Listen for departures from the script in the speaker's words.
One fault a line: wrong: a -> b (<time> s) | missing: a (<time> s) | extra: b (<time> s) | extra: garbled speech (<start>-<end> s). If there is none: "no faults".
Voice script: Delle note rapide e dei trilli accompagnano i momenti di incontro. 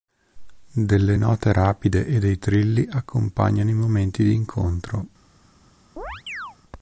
no faults